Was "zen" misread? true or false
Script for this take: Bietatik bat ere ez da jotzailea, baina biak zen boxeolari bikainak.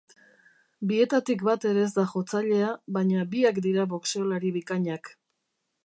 true